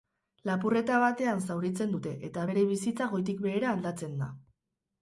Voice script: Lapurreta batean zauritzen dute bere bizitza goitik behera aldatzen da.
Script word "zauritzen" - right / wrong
right